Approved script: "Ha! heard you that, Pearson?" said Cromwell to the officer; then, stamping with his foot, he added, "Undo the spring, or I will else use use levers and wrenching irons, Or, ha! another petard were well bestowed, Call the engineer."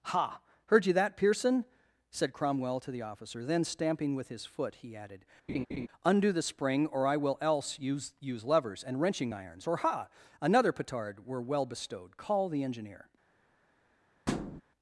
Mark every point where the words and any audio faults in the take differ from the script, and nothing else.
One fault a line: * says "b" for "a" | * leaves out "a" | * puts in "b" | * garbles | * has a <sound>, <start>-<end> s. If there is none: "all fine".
* has a laugh, 5.5-5.9 s
* has a thud, 14.3-14.6 s